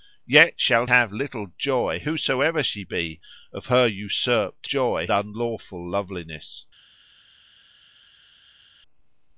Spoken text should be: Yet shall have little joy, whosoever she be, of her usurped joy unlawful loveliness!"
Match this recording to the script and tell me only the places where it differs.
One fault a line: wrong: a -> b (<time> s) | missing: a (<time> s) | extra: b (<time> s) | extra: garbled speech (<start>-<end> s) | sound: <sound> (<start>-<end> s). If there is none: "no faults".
no faults